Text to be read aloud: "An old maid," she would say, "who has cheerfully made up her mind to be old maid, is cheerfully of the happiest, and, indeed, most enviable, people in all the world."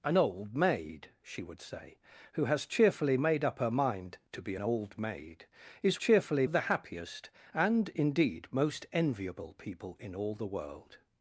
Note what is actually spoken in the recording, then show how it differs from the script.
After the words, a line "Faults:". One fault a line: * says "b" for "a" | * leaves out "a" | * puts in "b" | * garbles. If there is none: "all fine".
"An old maid," she would say, "who has cheerfully made up her mind to be old maid, is cheerfully of the happiest, and, indeed, most enviable, people in all the world."
Faults:
all fine